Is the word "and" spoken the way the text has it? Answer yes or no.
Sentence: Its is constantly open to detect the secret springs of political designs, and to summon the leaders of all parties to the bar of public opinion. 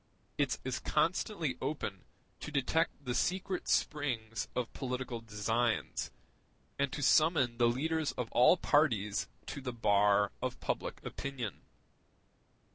yes